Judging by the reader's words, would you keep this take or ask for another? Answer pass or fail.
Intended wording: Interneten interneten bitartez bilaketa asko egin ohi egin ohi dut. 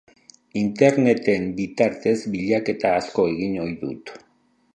fail